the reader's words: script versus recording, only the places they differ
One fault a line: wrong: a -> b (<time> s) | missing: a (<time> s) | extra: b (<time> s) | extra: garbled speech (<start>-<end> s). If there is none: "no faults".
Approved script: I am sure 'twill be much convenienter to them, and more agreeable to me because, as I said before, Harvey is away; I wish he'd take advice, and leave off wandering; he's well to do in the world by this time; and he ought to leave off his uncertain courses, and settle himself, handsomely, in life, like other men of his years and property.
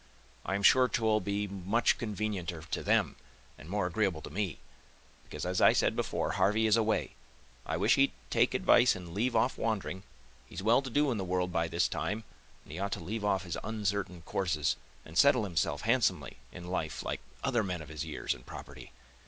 no faults